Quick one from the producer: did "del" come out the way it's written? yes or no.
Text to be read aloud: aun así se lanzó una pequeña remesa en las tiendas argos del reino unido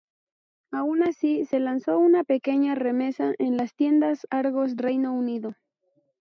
no